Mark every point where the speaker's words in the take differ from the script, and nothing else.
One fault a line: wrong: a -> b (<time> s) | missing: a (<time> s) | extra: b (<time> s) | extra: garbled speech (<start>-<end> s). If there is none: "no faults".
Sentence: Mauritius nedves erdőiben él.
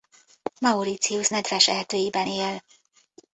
no faults